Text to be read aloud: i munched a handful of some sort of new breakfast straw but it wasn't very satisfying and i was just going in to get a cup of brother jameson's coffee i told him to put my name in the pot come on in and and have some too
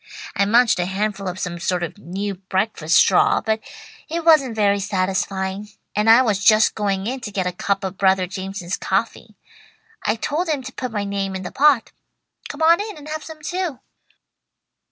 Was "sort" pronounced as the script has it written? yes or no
yes